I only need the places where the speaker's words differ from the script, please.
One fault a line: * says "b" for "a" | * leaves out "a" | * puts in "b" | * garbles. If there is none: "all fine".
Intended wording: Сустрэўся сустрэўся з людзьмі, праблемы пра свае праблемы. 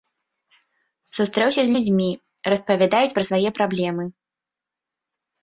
* leaves out "сустрэўся"
* says "распавядаюць" for "праблемы"